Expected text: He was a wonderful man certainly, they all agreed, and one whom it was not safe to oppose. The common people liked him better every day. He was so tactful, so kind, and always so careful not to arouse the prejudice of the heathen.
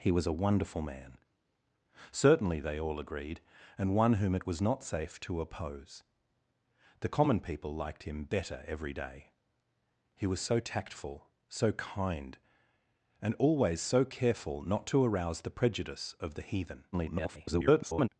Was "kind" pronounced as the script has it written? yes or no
yes